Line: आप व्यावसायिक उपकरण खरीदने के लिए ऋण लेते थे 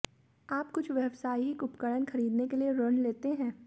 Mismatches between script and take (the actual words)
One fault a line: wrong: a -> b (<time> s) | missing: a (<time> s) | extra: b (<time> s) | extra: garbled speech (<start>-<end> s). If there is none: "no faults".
extra: कुछ (0.7 s)
wrong: थे -> हैं (3.3 s)